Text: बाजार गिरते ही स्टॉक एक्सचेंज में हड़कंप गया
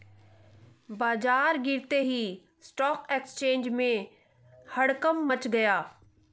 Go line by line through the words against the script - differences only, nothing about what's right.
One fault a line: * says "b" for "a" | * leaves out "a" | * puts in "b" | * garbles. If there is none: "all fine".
* puts in "मच"